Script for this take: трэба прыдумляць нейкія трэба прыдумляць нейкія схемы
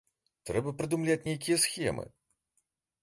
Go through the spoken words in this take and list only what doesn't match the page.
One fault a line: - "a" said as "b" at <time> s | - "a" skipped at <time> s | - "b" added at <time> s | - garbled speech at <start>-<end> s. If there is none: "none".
- "трэба прыдумляць нейкія" skipped at 1.6 s